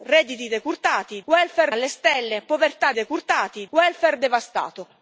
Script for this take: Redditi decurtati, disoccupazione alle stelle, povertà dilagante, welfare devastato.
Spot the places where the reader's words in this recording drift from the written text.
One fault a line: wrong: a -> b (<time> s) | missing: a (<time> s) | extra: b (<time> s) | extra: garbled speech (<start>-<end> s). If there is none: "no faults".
wrong: disoccupazione -> welfare (1.3 s)
wrong: dilagante -> decurtati (2.9 s)